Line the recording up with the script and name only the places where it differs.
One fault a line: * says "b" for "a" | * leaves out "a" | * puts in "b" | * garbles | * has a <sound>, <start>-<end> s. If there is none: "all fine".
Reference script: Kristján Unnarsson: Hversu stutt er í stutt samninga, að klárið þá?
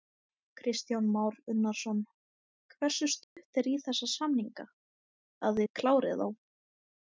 * puts in "Már"
* has a dropout, 3.2-3.4 s
* says "þessa" for "stutt"
* puts in "þið"